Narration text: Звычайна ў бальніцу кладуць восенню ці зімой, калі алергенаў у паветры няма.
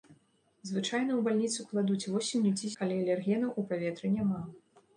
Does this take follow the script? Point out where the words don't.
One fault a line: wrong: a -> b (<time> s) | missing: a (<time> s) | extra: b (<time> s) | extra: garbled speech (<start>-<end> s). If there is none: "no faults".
missing: зімой (2.7 s)